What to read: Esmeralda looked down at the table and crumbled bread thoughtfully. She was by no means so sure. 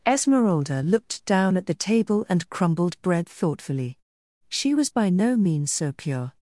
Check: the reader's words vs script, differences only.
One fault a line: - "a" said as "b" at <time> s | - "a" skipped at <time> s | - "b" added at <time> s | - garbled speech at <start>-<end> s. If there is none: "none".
- "sure" said as "pure" at 5.9 s